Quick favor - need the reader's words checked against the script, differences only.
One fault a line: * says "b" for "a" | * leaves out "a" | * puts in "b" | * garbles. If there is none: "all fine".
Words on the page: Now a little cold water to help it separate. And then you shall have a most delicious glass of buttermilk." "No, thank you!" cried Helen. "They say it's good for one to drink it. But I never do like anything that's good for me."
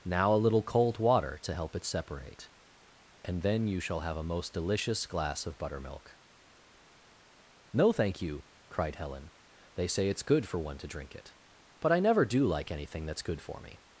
all fine